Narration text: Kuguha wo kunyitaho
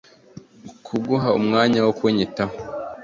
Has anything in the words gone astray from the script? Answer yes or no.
yes